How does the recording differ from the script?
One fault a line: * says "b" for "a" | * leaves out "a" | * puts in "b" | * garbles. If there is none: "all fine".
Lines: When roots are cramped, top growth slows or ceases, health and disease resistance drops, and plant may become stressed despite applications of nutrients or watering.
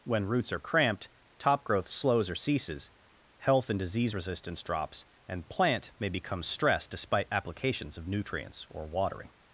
all fine